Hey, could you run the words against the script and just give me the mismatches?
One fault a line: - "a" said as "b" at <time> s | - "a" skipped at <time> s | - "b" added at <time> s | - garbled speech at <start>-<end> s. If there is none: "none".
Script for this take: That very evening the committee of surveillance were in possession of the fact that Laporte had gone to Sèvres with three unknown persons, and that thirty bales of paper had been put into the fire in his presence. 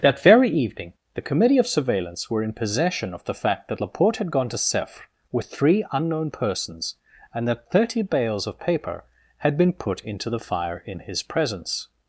none